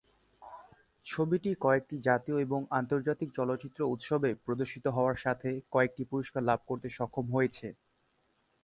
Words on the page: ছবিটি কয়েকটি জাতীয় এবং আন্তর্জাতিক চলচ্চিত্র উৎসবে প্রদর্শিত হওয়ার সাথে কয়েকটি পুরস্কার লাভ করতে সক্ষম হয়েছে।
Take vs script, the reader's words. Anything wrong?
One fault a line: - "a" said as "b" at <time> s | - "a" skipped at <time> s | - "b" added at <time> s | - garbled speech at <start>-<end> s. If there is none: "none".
none